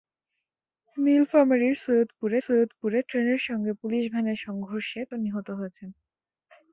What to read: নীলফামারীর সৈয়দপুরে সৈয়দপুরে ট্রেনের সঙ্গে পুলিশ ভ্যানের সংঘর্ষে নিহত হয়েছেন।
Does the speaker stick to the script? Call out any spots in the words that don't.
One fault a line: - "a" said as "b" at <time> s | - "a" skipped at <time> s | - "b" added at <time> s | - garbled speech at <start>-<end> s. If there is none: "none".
none